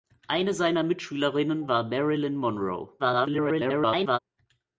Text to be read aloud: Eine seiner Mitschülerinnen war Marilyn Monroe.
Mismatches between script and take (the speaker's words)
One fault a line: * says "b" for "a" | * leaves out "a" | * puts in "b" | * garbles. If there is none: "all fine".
* garbles